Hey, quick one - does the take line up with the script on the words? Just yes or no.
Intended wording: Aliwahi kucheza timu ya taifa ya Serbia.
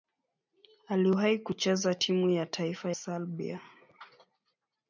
no